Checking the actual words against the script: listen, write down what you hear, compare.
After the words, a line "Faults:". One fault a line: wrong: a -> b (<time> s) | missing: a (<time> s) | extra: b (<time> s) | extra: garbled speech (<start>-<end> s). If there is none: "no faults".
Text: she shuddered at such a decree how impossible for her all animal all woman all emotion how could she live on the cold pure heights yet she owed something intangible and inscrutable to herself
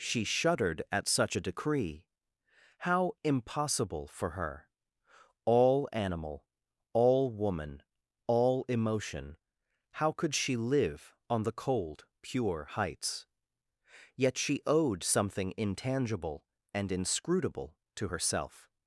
she shuddered at such a decree how impossible for her all animal all woman all emotion how could she live on the cold pure heights yet she owed something intangible and inscrutable to herself
Faults:
no faults